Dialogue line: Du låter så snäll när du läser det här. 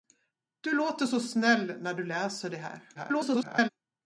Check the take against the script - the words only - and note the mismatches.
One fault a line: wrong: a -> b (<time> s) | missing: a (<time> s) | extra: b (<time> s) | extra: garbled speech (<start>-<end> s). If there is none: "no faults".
extra: garbled speech (2.9-3.7 s)